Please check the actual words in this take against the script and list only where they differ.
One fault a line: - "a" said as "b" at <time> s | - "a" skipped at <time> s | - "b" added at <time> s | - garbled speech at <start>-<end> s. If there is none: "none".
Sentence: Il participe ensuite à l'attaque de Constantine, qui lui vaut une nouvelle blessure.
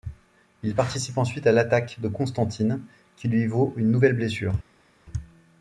none